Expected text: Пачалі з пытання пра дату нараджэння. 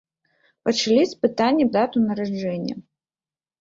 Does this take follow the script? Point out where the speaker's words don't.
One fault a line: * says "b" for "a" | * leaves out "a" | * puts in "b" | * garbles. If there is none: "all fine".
* leaves out "пра"